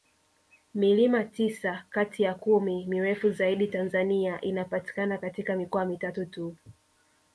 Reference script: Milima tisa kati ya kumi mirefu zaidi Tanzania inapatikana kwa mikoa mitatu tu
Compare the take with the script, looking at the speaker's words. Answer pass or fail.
fail